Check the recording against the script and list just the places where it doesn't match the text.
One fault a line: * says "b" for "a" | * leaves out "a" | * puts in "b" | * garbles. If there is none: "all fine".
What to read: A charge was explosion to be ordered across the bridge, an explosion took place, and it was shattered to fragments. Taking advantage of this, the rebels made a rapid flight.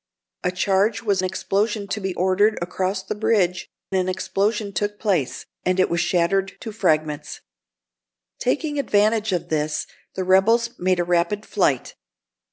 all fine